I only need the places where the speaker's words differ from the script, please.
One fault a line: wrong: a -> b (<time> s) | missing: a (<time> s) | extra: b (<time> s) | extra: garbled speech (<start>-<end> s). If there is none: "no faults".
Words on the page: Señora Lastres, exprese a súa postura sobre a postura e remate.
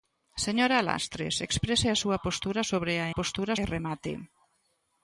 no faults